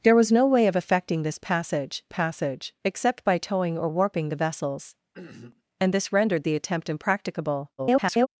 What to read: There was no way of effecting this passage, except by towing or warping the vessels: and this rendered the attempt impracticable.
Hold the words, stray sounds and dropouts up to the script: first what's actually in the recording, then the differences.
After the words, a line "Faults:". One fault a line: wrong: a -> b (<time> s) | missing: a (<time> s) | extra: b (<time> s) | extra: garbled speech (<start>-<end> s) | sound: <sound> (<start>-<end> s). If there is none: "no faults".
There was no way of effecting this passage passage, except by towing or warping the vessels: and this rendered the attempt impracticable. [garbled]
Faults:
extra: passage (2.0 s)
sound: throat clearing (5.1-5.6 s)
extra: garbled speech (7.8-8.3 s)